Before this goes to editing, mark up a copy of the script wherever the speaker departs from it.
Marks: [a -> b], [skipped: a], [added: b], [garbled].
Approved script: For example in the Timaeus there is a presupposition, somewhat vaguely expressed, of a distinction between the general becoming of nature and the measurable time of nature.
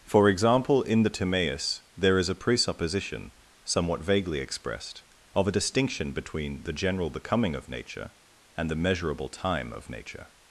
For example in the Timaeus there is a presupposition, somewhat vaguely expressed, of a distinction between the general becoming of nature and the measurable time of nature.